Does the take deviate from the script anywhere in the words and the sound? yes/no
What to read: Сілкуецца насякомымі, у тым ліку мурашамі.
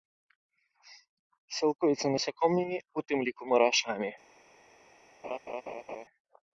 yes